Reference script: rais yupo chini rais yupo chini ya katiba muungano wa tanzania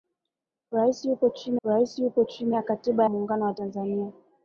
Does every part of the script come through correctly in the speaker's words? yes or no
yes